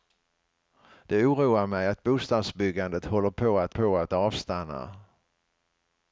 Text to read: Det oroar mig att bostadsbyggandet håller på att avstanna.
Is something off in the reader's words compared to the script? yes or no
yes